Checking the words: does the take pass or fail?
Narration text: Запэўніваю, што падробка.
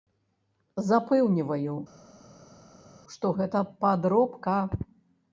fail